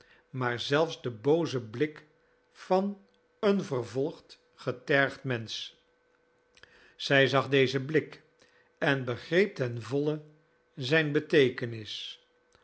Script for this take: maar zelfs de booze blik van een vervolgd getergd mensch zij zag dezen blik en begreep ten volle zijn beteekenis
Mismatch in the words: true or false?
false